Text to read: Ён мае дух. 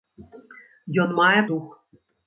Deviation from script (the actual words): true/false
false